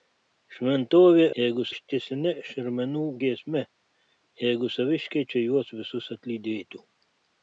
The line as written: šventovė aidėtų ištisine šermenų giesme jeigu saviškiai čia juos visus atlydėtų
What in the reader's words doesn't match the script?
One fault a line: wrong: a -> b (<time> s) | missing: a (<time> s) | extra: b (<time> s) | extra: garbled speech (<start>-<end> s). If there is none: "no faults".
wrong: aidėtų -> jeigu (1.4 s)